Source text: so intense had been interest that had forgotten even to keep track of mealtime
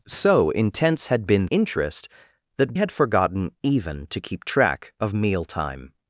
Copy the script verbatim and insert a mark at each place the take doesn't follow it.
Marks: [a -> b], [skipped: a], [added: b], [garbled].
so intense had been interest that had forgotten even to keep track of mealtime